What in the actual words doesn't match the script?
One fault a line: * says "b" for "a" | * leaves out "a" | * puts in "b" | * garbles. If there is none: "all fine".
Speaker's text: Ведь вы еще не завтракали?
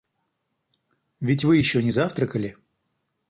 all fine